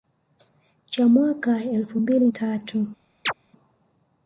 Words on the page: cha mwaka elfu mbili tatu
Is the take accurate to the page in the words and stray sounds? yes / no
no